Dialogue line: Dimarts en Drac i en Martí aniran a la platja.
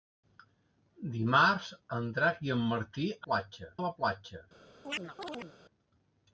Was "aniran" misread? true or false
true